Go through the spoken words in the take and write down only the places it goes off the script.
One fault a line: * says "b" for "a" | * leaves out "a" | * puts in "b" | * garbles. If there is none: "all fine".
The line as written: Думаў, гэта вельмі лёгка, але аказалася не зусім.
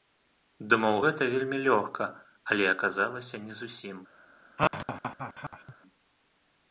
all fine